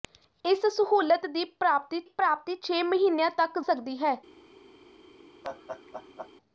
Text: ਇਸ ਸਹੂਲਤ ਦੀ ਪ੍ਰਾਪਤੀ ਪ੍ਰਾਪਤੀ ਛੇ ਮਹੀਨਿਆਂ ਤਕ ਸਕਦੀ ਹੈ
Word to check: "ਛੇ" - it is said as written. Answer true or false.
true